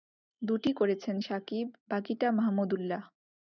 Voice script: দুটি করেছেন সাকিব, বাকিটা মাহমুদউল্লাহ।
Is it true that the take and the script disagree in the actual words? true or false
false